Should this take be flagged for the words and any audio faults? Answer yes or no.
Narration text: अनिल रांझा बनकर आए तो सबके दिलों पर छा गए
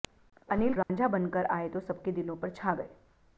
yes